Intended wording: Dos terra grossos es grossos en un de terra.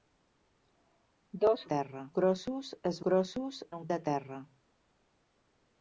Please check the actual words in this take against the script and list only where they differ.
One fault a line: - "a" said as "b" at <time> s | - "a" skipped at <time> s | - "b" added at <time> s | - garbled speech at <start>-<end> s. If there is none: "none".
none